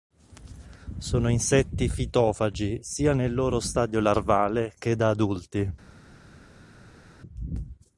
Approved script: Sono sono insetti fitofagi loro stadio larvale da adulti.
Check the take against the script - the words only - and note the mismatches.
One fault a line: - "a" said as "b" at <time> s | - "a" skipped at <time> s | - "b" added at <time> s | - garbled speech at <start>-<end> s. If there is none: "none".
- "sono" skipped at 1.3 s
- "sia nel" added at 2.8 s
- "che" added at 4.8 s